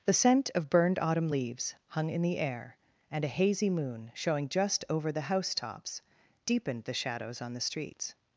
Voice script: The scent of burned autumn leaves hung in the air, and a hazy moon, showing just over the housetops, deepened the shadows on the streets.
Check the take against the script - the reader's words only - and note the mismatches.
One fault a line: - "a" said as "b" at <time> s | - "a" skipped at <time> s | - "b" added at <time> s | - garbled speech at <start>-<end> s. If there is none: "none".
none